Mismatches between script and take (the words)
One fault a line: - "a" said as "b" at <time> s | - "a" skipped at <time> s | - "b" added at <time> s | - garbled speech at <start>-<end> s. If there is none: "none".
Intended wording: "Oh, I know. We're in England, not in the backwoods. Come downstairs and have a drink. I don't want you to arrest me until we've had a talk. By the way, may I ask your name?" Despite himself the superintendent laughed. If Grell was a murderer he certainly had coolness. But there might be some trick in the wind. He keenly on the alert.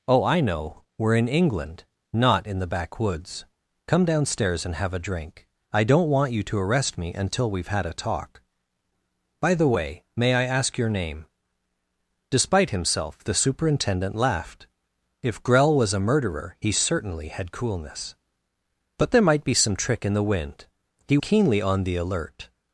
none